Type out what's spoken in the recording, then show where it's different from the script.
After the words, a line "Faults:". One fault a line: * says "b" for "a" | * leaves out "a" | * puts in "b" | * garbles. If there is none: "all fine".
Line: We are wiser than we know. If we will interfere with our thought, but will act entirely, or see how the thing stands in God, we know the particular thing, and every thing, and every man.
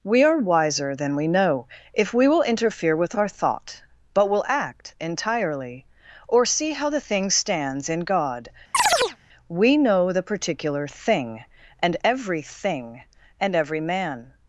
We are wiser than we know. If we will interfere with our thought, but will act entirely, or see how the thing stands in God, we know the particular thing, and every thing, and every man.
Faults:
all fine